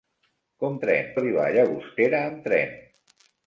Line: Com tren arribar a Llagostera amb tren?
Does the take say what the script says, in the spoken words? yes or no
yes